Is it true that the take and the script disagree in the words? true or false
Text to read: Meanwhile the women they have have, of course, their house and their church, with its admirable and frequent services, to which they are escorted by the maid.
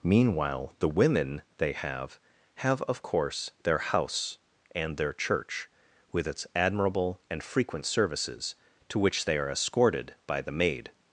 false